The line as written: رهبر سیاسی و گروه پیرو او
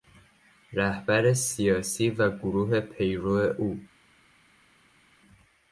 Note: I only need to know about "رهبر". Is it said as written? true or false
true